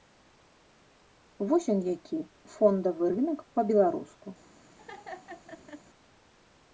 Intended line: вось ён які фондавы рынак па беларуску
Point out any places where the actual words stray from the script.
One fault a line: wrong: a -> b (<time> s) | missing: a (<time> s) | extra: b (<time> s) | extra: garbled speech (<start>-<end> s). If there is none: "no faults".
no faults